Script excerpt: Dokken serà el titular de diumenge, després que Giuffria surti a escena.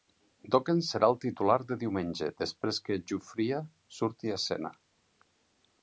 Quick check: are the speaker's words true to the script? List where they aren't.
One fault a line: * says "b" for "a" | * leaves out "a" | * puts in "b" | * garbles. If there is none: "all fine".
all fine